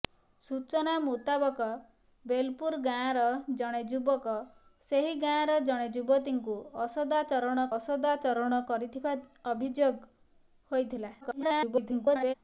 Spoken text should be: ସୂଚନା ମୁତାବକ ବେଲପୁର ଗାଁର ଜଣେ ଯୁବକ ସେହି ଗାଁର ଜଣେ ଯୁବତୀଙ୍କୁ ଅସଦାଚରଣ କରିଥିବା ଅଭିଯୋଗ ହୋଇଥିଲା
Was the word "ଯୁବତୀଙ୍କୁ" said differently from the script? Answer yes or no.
no